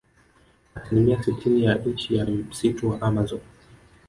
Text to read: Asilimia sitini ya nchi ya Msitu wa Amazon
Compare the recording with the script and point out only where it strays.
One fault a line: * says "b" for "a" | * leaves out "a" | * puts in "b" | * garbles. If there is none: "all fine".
all fine